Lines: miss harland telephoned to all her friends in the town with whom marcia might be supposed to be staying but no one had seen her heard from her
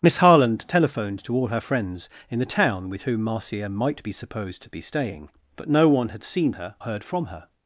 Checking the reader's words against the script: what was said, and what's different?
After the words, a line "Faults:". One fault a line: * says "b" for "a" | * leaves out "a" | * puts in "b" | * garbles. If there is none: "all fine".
miss harland telephoned to all her friends in the town with whom marcia might be supposed to be staying but no one had seen her heard from her
Faults:
all fine